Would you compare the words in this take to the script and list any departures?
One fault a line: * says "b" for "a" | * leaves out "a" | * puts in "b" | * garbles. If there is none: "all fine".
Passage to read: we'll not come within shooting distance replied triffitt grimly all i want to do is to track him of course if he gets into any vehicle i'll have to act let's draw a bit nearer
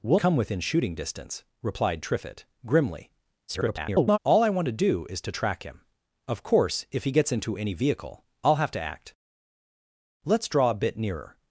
* leaves out "not"
* garbles